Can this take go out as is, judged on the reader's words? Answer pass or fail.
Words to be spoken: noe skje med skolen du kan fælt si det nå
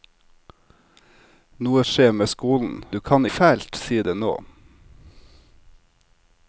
pass